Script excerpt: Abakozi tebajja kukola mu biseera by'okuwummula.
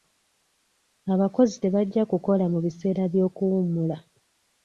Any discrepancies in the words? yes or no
no